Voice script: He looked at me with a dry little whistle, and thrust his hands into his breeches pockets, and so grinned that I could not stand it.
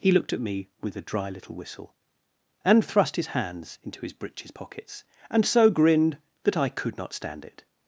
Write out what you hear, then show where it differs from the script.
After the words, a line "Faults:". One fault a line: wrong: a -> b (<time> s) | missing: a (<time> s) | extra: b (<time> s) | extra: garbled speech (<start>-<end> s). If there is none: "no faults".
He looked at me with a dry little whistle, and thrust his hands into his breeches pockets, and so grinned that I could not stand it.
Faults:
no faults